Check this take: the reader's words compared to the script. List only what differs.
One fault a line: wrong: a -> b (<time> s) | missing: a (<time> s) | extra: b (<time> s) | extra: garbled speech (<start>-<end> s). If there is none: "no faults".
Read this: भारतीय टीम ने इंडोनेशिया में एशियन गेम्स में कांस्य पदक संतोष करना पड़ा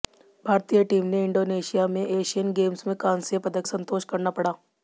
no faults